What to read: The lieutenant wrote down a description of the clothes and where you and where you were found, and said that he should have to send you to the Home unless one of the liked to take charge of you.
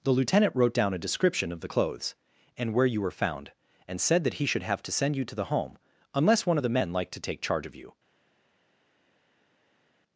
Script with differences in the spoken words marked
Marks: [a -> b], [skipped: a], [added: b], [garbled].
The lieutenant wrote down a description of the clothes and where you [skipped: and where you] were found, and said that he should have to send you to the Home unless one of the [added: men] liked to take charge of you.